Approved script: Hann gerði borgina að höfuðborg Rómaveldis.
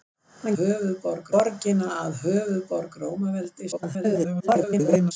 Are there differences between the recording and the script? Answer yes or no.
yes